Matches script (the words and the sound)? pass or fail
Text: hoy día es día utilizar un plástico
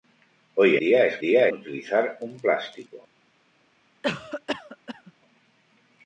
fail